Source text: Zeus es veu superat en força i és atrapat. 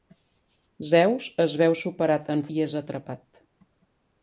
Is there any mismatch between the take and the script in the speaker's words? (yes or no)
yes